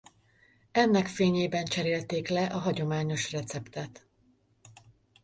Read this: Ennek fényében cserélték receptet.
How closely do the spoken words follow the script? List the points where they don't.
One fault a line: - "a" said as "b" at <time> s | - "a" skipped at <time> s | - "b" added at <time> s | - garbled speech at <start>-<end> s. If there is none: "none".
- "le a hagyományos" added at 2.3 s